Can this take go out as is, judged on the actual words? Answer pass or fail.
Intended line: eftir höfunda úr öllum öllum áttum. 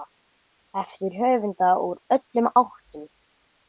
fail